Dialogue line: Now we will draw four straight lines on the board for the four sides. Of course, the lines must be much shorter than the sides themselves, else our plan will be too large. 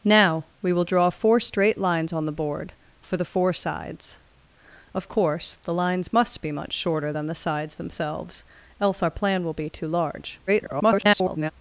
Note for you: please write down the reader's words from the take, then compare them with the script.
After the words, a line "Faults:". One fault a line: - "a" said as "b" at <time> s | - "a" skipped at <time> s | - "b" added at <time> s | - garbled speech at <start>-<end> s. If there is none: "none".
Now we will draw four straight lines on the board for the four sides. Of course, the lines must be much shorter than the sides themselves, else our plan will be too large. [garbled]
Faults:
- garbled speech at 10.5-11.5 s